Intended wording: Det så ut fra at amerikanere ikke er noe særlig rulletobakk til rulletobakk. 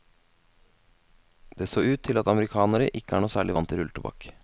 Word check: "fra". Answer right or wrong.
wrong